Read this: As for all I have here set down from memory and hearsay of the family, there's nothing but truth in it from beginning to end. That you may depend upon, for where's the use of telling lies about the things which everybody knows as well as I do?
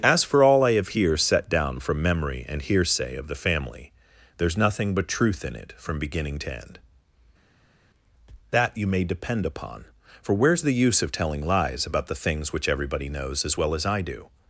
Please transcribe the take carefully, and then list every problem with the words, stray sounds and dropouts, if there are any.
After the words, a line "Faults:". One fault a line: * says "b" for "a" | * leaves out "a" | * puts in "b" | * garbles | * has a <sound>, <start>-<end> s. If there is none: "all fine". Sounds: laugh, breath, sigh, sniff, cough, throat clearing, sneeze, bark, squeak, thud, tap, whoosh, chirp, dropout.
As for all I have here set down from memory and hearsay of the family, there's nothing but truth in it from beginning to end. That you may depend upon, for where's the use of telling lies about the things which everybody knows as well as I do?
Faults:
all fine